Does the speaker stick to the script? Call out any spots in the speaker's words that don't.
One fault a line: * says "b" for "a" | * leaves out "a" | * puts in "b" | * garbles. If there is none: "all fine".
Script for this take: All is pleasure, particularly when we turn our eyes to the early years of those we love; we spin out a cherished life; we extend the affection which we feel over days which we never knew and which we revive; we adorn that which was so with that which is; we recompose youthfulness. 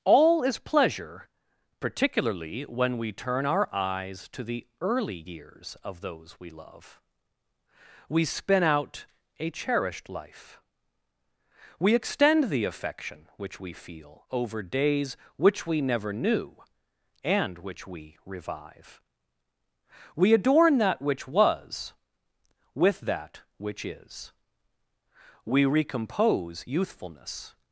* leaves out "so"